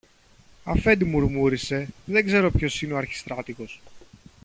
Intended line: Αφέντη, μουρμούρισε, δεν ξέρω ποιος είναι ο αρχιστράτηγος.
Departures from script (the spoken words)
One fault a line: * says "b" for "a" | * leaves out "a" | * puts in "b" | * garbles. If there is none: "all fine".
all fine